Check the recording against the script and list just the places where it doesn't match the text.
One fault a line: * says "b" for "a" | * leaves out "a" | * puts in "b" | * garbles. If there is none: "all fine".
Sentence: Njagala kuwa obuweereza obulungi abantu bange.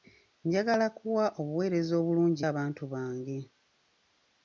all fine